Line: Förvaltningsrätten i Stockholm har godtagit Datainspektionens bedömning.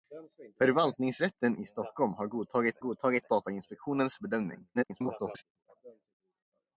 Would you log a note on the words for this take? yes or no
yes